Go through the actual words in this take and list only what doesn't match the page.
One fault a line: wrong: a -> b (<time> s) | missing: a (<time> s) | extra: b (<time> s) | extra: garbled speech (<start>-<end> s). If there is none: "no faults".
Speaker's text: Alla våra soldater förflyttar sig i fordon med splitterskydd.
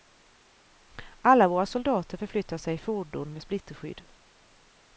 no faults